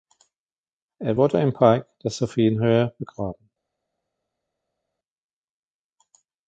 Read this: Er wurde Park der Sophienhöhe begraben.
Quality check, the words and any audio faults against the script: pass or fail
fail